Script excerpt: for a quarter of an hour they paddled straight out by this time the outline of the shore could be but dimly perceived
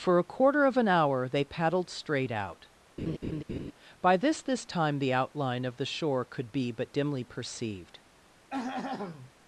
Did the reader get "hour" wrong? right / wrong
right